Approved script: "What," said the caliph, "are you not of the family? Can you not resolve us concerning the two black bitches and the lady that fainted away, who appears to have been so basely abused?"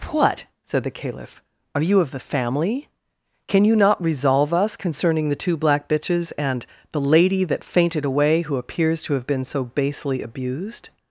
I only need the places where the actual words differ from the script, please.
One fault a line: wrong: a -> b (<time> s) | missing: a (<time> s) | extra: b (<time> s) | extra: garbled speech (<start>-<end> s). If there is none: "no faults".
missing: not (2.0 s)